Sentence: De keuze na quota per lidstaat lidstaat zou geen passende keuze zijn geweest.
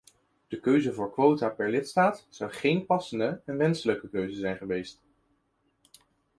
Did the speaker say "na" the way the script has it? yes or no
no